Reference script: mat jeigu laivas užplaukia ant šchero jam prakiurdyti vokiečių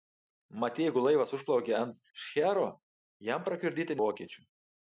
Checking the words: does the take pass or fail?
pass